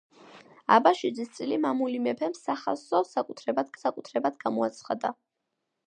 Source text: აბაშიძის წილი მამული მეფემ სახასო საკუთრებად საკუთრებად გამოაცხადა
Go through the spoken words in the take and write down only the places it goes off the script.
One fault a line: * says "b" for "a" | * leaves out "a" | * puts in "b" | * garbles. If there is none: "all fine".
all fine